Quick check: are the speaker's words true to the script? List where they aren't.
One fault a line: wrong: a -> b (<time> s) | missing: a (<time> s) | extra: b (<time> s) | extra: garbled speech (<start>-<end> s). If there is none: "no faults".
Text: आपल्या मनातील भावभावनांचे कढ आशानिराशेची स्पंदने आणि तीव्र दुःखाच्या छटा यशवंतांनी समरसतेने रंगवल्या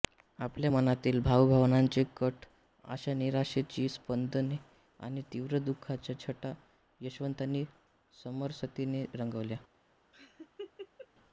no faults